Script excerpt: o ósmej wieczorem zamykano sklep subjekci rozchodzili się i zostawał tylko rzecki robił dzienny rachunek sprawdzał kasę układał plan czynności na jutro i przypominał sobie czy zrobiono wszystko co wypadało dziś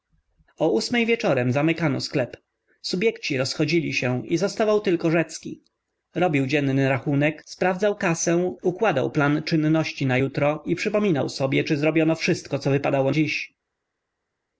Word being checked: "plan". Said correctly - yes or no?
yes